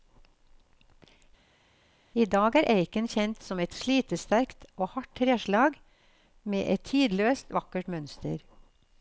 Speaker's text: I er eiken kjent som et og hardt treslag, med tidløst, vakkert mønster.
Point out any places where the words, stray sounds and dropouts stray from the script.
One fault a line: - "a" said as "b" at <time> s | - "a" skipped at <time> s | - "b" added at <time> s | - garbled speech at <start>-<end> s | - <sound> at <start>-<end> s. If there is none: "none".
- "dag" added at 2.3 s
- "slitesterkt" added at 3.8 s
- "et" added at 6.8 s